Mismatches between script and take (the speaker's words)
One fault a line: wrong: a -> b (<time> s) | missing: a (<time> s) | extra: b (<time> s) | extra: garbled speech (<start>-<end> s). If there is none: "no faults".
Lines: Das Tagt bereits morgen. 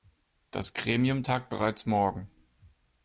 extra: Gremium (0.7 s)